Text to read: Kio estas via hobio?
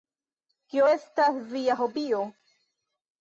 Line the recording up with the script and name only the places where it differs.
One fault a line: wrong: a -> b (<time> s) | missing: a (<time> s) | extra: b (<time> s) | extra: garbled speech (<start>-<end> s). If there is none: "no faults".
no faults